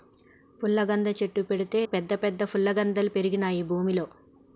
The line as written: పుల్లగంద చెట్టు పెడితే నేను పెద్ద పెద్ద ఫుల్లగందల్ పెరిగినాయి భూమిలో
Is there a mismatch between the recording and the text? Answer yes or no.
yes